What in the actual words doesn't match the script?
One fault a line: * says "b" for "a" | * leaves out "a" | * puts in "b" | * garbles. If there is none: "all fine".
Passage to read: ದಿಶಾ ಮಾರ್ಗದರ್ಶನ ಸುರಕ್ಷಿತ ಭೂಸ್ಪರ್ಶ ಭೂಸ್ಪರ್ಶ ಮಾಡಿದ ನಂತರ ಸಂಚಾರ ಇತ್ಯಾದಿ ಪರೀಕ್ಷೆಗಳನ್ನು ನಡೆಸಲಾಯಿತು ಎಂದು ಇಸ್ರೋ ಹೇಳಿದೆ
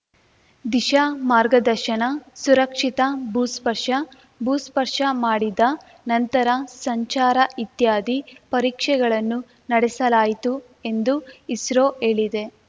all fine